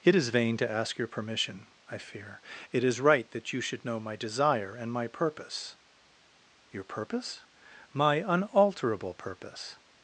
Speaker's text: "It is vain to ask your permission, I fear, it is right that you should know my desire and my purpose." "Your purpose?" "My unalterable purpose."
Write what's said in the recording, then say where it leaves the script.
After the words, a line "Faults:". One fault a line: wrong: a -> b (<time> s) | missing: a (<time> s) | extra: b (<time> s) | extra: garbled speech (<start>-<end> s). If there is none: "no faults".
"It is vain to ask your permission, I fear, it is right that you should know my desire and my purpose." "Your purpose?" "My unalterable purpose."
Faults:
no faults